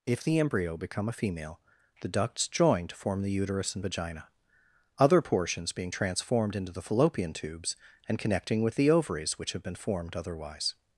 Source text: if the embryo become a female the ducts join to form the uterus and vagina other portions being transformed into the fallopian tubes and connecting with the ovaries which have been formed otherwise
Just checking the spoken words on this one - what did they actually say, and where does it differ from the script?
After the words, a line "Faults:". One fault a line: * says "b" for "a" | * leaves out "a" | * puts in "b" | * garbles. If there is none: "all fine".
if the embryo become a female the ducts join to form the uterus and vagina other portions being transformed into the fallopian tubes and connecting with the ovaries which have been formed otherwise
Faults:
all fine